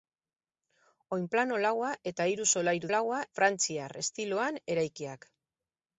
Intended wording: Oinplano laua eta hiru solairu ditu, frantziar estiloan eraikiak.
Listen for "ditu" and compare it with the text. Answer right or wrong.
wrong